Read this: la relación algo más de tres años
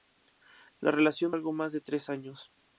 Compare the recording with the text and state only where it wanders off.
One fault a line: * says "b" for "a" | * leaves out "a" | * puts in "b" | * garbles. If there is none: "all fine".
all fine